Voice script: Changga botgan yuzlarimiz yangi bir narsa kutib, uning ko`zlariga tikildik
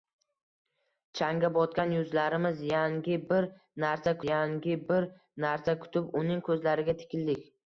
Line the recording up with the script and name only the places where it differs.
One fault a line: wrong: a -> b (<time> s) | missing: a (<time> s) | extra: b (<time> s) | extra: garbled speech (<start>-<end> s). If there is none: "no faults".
extra: yangi bir narsa (4.3 s)